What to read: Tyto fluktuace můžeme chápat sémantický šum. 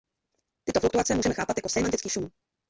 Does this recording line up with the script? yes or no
no